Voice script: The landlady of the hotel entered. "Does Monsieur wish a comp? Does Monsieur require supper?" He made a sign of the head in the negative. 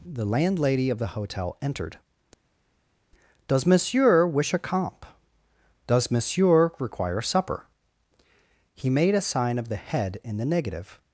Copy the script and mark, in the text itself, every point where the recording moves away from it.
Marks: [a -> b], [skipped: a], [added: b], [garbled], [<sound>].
The landlady of the hotel entered. "Does Monsieur wish a comp? Does Monsieur require supper?" He made a sign of the head in the negative.